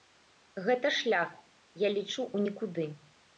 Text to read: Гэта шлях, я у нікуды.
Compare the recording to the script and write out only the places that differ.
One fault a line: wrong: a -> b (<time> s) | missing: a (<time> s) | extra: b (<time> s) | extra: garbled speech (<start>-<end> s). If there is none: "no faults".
extra: лічу (2.0 s)